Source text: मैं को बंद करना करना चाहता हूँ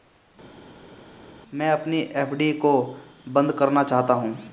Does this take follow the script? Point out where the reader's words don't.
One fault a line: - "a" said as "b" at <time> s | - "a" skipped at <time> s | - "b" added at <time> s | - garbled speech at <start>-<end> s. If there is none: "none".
- "अपनी एफ.डी" added at 1.7 s
- "करना" skipped at 3.8 s